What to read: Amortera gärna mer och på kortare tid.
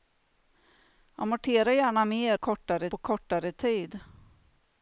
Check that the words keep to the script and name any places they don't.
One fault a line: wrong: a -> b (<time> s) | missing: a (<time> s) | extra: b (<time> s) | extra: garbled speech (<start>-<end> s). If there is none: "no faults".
wrong: och -> kortare (2.3 s)